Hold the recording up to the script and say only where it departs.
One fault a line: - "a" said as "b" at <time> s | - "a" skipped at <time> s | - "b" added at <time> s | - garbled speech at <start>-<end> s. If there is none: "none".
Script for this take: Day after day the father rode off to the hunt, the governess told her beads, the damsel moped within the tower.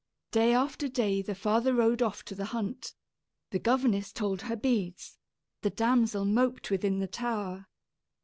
none